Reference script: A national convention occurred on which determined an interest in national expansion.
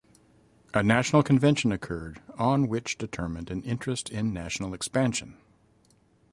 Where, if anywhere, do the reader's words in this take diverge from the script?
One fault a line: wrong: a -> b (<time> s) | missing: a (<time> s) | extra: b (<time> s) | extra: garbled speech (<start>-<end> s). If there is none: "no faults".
no faults